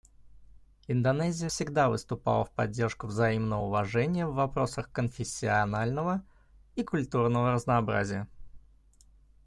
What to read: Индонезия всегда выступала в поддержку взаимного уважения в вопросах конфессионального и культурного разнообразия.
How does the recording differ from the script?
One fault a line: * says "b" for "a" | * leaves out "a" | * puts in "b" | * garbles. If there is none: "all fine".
all fine